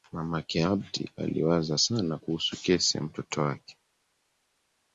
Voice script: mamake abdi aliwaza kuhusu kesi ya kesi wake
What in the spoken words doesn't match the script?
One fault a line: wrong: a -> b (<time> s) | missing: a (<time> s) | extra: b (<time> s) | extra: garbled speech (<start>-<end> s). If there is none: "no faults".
extra: sana (1.8 s)
wrong: kesi -> mtoto (3.0 s)